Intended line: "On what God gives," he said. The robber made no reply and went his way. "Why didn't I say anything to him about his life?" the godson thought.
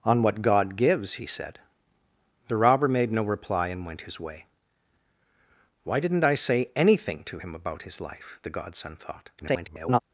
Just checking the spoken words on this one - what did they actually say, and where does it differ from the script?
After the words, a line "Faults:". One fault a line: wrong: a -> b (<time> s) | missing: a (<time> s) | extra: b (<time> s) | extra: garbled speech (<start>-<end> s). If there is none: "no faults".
"On what God gives," he said. The robber made no reply and went his way. "Why didn't I say anything to him about his life?" the godson thought. [garbled]
Faults:
extra: garbled speech (9.4-10.0 s)